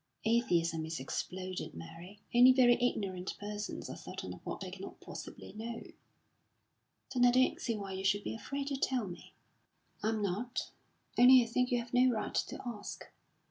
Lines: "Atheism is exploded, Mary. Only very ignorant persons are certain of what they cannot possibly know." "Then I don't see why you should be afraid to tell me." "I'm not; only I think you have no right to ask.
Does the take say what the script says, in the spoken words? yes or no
yes